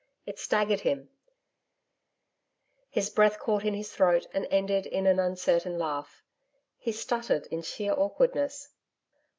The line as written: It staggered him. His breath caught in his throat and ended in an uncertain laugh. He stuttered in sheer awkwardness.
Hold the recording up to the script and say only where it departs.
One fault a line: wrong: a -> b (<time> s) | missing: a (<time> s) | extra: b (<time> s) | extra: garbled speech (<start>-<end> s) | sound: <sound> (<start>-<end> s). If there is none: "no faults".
no faults